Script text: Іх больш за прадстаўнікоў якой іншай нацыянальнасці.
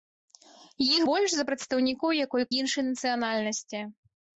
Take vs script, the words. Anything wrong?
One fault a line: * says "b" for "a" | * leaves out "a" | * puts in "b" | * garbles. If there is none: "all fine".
all fine